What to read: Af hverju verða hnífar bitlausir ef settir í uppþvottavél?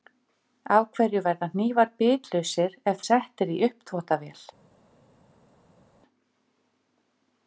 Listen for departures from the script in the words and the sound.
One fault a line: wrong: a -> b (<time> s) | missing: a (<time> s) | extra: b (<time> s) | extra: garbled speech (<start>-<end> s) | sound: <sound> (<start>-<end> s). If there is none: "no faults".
no faults